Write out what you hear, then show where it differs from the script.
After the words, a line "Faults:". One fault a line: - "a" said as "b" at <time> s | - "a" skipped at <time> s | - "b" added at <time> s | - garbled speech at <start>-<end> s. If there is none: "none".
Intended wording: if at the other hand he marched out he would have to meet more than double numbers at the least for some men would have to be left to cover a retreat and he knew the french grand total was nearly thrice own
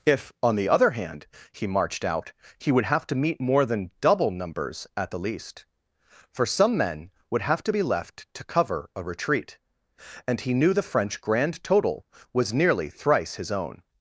if on the other hand he marched out he would have to meet more than double numbers at the least for some men would have to be left to cover a retreat and he knew the french grand total was nearly thrice his own
Faults:
- "at" said as "on" at 0.4 s
- "his" added at 13.4 s